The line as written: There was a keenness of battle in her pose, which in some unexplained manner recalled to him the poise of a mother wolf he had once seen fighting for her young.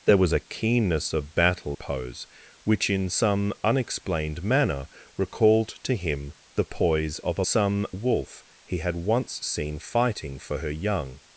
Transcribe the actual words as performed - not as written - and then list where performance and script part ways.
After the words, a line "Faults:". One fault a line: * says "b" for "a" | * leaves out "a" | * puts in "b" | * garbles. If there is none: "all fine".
There was a keenness of battle pose, which in some unexplained manner recalled to him the poise of a some wolf he had once seen fighting for her young.
Faults:
* leaves out "in her"
* says "some" for "mother"